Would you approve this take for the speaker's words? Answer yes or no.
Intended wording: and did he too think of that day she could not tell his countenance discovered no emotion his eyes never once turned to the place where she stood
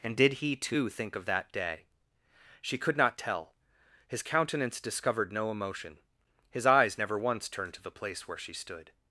yes